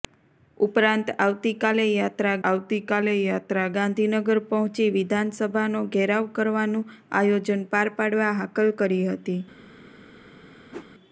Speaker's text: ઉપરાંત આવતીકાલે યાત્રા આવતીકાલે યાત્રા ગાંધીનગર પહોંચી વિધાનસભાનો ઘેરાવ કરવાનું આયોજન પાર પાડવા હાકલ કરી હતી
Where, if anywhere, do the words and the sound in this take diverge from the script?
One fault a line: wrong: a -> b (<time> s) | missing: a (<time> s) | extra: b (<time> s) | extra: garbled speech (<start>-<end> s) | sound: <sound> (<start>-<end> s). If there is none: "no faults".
sound: whoosh (10.7-10.9 s)